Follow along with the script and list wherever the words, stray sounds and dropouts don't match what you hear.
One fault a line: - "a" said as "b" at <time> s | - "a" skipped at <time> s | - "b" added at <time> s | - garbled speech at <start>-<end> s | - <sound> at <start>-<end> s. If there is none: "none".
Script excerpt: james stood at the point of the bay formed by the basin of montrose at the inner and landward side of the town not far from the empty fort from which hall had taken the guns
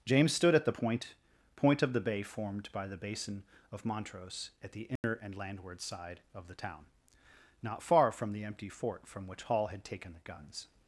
- "point" added at 1.5 s
- dropout at 5.0-5.0 s